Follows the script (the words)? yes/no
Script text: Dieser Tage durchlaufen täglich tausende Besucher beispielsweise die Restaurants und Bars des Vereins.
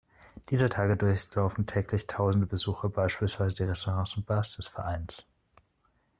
yes